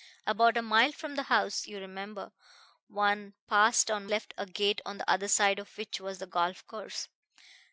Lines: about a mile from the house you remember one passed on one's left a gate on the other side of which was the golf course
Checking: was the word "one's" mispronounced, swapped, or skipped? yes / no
yes